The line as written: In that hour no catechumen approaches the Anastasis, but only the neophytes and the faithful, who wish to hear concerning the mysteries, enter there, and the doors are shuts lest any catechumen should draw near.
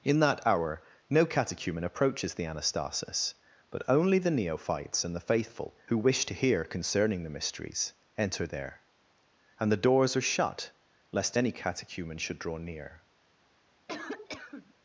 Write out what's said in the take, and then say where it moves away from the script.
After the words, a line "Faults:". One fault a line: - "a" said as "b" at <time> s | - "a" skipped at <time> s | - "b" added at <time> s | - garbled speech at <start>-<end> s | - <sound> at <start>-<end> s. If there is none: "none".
In that hour no catechumen approaches the Anastasis, but only the neophytes and the faithful, who wish to hear concerning the mysteries, enter there, and the doors are shut lest any catechumen should draw near.
Faults:
- "shuts" said as "shut" at 10.3 s
- cough at 13.9-14.7 s